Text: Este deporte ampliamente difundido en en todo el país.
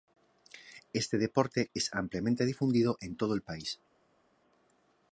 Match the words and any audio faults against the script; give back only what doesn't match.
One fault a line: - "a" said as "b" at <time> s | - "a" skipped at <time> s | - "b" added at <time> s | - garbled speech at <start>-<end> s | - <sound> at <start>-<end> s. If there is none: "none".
- "es" added at 1.8 s
- "en" skipped at 3.2 s